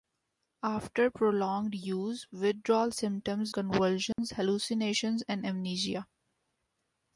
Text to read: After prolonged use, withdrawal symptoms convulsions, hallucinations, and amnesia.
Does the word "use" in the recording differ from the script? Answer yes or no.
no